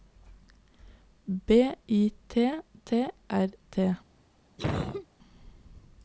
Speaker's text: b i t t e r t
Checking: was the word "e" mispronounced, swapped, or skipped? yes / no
yes